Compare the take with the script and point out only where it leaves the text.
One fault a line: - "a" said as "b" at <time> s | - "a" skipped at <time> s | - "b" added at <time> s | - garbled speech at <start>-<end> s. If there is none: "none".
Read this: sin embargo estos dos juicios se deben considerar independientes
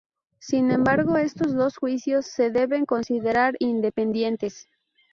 none